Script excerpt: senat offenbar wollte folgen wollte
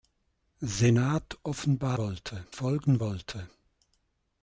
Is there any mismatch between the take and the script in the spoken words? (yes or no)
no